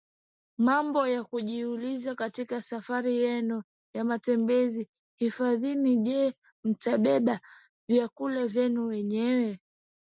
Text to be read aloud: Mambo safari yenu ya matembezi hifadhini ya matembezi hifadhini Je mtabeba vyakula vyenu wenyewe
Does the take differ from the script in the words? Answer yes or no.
yes